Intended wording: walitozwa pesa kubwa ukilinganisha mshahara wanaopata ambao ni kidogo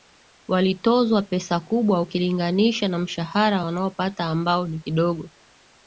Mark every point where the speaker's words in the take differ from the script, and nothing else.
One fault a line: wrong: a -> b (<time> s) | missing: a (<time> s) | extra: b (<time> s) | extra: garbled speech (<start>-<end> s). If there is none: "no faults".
extra: na (2.9 s)